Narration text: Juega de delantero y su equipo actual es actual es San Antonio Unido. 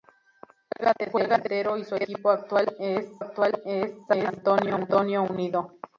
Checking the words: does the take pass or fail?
pass